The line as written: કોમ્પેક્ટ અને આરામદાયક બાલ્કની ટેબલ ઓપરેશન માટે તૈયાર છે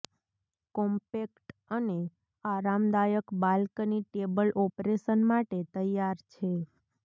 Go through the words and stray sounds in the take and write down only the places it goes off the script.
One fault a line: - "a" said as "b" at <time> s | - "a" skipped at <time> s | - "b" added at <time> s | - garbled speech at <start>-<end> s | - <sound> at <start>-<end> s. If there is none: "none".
none